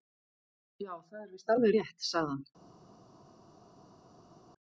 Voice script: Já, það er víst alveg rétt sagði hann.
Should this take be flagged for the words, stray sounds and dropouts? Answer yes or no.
no